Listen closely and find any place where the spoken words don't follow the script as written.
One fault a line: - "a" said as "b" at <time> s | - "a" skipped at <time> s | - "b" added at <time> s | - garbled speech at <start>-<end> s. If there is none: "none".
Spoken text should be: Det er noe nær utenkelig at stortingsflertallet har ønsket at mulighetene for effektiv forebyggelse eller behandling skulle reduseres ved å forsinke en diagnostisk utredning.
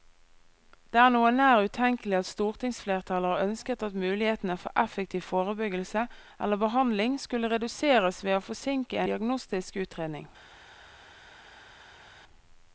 - "en" skipped at 9.0 s